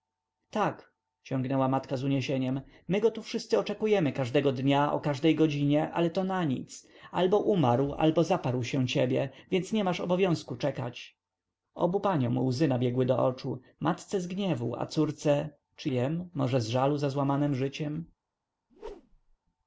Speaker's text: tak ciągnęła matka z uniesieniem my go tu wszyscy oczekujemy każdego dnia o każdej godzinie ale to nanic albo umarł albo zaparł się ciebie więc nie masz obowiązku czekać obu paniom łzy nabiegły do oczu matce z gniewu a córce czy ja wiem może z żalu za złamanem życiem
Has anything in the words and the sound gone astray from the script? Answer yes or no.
yes